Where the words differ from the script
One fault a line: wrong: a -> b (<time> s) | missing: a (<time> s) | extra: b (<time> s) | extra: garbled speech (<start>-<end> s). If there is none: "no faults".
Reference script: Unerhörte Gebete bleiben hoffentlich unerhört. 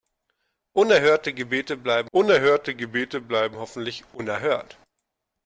extra: unerhörte Gebete bleiben (2.1 s)